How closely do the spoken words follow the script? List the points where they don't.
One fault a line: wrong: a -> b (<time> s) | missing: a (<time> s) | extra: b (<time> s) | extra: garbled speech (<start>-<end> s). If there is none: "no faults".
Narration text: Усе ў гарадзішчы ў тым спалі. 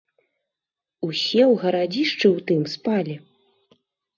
no faults